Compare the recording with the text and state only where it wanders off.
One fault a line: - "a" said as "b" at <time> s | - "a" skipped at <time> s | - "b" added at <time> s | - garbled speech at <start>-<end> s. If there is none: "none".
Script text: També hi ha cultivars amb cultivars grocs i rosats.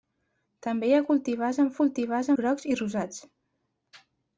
none